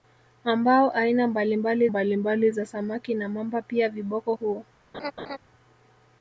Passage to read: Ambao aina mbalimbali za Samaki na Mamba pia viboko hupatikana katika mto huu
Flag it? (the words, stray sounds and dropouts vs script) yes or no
yes